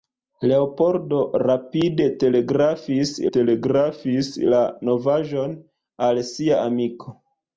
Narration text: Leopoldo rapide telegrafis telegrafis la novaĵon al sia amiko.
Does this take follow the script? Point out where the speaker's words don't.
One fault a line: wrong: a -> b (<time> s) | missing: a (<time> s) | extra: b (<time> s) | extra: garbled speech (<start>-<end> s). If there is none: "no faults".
no faults